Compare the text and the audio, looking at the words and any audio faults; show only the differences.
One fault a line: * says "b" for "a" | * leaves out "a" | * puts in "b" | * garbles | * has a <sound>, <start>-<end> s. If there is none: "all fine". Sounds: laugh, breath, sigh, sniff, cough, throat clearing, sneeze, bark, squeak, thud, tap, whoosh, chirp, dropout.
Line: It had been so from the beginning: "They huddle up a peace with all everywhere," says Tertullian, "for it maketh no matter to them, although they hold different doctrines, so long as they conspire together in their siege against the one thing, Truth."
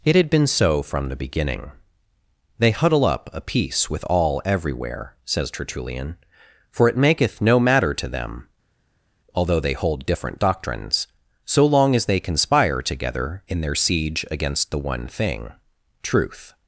all fine